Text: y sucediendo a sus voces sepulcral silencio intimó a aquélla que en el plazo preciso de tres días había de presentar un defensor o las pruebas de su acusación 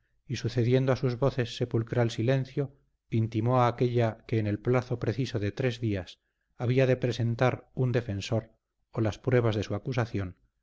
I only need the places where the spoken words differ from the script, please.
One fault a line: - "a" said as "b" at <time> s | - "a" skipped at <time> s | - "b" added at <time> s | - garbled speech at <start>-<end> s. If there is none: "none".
none